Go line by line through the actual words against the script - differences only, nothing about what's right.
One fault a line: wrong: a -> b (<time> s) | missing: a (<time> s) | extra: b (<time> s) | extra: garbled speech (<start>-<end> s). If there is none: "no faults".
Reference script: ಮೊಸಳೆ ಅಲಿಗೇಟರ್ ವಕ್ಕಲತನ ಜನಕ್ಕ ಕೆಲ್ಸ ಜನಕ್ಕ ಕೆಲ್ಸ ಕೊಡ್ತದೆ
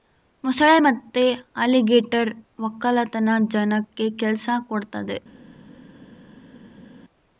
extra: ಮತ್ತೆ (0.8 s)
missing: ಜನಕ್ಕ ಕೆಲ್ಸ (4.5 s)